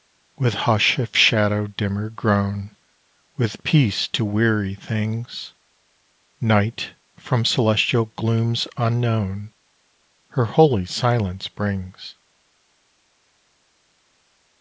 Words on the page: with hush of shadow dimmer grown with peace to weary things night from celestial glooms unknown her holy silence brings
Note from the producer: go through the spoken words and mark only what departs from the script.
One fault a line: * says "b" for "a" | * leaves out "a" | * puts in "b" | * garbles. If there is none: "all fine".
all fine